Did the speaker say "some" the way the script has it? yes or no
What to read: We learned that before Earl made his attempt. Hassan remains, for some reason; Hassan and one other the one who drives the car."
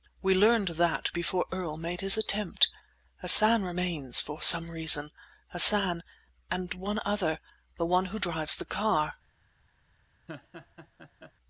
yes